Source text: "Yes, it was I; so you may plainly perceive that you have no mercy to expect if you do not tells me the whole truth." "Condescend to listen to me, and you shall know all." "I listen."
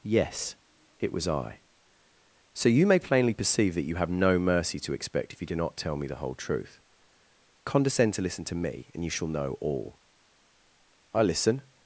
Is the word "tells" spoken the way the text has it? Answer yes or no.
no